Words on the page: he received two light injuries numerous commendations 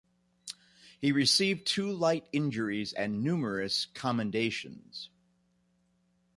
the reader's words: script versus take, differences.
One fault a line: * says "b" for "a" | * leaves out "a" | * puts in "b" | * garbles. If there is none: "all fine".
* puts in "and"